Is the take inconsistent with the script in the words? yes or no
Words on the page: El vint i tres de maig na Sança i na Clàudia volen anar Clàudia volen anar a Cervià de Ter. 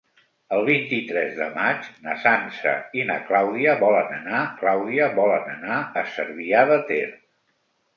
no